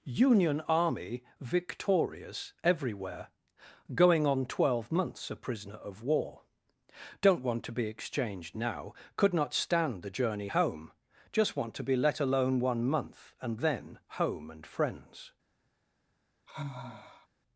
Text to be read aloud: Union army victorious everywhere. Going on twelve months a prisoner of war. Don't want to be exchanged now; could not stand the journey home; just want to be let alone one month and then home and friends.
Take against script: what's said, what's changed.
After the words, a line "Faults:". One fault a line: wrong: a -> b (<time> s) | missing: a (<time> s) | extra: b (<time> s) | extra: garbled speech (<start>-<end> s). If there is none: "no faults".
Union army victorious everywhere. Going on twelve months a prisoner of war. Don't want to be exchanged now; could not stand the journey home; just want to be let alone one month and then home and friends.
Faults:
no faults